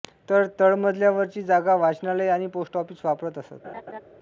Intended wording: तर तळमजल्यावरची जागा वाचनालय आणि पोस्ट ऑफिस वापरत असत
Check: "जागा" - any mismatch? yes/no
no